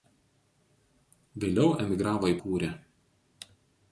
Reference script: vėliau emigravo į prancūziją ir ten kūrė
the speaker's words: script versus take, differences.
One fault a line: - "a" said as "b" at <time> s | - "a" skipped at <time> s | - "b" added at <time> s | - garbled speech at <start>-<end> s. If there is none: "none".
- "prancūziją ir ten" skipped at 2.4 s